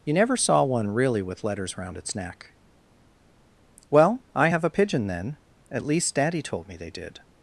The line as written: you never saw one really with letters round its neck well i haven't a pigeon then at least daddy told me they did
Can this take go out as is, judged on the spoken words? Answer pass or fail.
fail